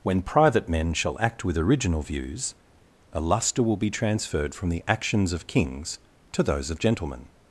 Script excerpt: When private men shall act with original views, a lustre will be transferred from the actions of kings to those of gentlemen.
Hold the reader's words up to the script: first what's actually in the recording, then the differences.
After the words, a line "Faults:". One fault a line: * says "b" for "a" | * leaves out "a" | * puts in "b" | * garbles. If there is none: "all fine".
When private men shall act with original views, a lustre will be transferred from the actions of kings to those of gentlemen.
Faults:
all fine